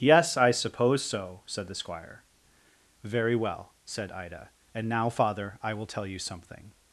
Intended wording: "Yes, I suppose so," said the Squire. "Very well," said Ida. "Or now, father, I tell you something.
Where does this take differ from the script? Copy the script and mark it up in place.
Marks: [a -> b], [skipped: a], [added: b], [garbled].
"Yes, I suppose so," said the Squire. "Very well," said Ida. ["Or -> And] now, father, I [added: will] tell you something.